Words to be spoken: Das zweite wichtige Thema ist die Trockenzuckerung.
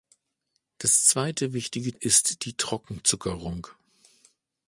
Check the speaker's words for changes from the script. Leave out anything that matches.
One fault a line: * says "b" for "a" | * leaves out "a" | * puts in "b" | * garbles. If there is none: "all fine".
* leaves out "Thema"